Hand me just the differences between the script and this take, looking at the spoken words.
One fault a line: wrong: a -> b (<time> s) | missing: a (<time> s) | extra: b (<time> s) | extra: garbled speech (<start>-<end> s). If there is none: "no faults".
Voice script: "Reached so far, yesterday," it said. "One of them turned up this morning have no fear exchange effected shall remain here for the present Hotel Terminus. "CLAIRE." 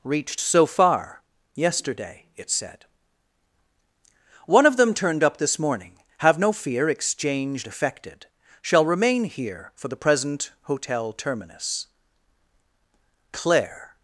no faults